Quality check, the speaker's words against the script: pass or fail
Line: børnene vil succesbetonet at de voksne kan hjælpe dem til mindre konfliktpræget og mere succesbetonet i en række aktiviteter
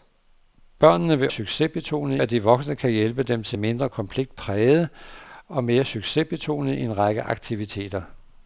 pass